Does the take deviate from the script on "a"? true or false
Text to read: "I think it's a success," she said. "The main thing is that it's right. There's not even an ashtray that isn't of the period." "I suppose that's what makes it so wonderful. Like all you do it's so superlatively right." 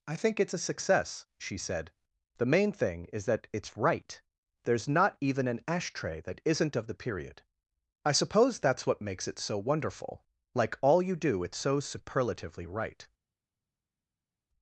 false